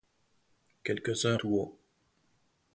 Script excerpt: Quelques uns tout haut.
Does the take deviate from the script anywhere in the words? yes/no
no